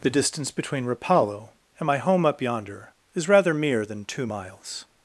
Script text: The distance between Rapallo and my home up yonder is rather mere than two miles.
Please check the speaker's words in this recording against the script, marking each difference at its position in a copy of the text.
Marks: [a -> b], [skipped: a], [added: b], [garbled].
The distance between Rapallo and my home up yonder is rather mere than two miles.